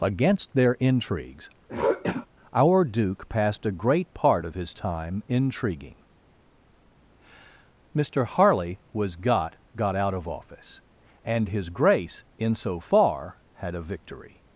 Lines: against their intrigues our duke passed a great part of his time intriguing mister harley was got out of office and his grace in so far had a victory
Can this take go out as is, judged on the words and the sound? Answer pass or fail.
fail